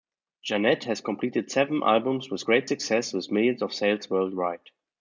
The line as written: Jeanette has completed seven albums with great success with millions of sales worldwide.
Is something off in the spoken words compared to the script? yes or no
no